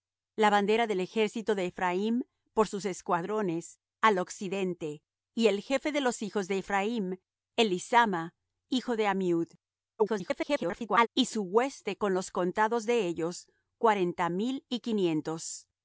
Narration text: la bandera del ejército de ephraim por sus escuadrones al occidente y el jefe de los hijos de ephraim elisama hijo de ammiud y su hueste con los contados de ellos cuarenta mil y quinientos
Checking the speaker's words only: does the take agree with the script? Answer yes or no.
no